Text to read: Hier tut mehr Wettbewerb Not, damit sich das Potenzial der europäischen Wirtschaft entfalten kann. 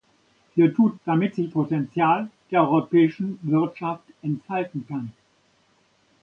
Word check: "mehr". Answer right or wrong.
wrong